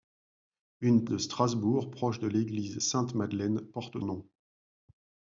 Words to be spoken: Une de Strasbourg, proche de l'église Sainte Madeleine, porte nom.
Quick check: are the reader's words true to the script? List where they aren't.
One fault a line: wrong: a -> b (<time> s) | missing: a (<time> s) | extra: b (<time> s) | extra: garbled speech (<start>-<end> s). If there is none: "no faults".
no faults